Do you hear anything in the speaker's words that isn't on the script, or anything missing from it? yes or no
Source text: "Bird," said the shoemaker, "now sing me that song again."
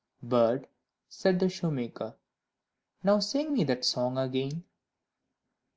no